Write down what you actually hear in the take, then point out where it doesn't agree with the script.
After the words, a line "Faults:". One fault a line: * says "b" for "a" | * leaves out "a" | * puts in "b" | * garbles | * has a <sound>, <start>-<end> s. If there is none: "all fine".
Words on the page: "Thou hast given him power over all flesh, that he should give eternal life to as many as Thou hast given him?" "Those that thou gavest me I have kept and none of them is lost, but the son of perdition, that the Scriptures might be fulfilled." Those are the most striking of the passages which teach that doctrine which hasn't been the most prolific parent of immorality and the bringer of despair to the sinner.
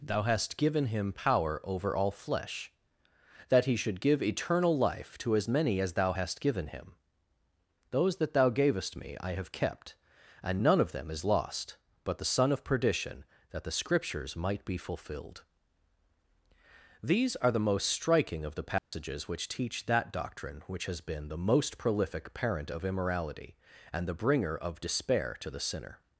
"Thou hast given him power over all flesh, that he should give eternal life to as many as Thou hast given him?" "Those that thou gavest me I have kept and none of them is lost, but the son of perdition, that the Scriptures might be fulfilled." These are the most striking of the passages which teach that doctrine which has been the most prolific parent of immorality and the bringer of despair to the sinner.
Faults:
* says "These" for "Those"
* has a dropout, 18.8-18.9 s
* says "has" for "hasn't"